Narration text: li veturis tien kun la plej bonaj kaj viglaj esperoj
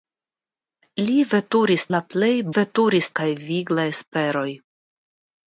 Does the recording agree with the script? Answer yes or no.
no